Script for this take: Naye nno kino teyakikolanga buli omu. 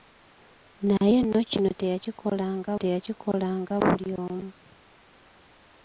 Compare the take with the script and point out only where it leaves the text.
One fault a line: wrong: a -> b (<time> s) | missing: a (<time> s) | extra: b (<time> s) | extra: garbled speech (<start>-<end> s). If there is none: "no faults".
extra: teyakikolanga (2.8 s)